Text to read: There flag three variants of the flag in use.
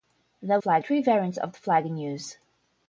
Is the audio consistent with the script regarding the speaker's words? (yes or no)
yes